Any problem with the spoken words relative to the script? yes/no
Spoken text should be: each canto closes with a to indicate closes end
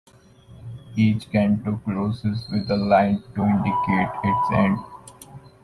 yes